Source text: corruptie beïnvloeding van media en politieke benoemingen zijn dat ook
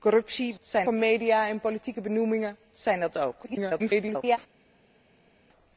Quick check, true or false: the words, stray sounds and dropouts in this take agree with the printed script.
false